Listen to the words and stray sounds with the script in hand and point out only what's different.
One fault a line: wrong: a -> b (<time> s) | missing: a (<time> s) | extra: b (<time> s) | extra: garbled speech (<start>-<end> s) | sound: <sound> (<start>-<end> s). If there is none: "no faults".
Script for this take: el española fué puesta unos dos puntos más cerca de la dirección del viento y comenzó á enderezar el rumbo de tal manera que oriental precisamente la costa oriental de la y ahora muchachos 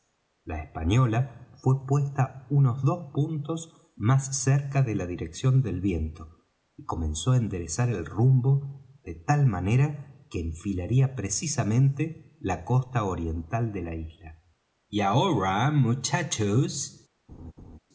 wrong: el -> la (0.5 s)
wrong: oriental -> enfilaría (10.4 s)
extra: isla (13.9 s)
sound: laugh (17.3-17.8 s)